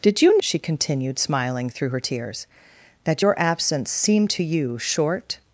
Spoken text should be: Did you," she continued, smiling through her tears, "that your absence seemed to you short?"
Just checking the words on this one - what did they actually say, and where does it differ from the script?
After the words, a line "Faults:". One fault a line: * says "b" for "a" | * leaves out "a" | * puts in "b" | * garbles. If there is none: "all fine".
Did you," she continued, smiling through her tears, "that your absence seemed to you short?"
Faults:
all fine